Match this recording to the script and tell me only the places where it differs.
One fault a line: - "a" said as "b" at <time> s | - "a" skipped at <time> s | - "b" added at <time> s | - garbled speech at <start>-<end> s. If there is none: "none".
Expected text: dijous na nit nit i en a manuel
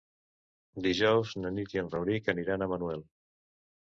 - "nit" skipped at 1.8 s
- "rauric aniran" added at 1.9 s